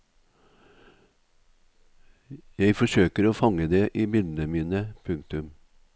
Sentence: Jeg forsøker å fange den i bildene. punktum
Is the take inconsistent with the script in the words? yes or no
yes